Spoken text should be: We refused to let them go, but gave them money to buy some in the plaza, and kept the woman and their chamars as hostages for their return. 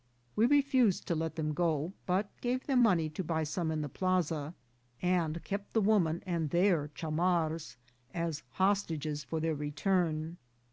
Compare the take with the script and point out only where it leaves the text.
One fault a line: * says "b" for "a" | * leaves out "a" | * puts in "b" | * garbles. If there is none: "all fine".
all fine